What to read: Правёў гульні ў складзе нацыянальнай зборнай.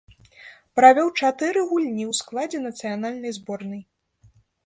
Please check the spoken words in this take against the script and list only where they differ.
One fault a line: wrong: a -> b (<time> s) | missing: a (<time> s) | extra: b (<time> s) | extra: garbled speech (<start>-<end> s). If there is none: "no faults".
extra: чатыры (1.2 s)